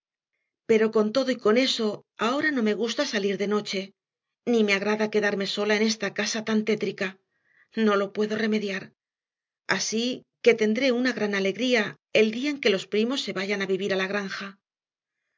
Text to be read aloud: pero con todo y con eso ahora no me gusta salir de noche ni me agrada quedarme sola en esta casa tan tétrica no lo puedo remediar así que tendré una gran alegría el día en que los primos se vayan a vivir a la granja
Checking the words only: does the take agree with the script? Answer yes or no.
yes